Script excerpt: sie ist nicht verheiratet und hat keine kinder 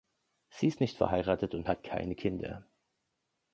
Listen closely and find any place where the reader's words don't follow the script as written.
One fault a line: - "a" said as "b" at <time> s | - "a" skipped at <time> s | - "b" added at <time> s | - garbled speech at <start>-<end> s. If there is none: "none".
none